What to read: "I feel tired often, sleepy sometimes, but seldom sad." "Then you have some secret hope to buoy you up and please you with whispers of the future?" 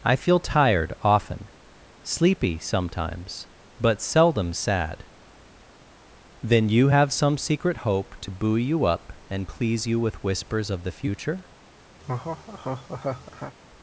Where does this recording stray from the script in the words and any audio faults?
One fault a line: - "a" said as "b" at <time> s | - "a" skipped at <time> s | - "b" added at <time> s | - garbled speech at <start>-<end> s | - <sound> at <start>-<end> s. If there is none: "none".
- laugh at 12.0-13.6 s